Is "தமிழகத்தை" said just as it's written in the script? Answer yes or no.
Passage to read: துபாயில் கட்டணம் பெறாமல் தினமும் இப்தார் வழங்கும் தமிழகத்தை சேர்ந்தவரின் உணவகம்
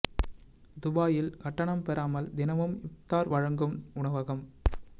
no